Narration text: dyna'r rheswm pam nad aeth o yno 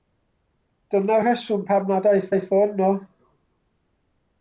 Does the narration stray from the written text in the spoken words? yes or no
yes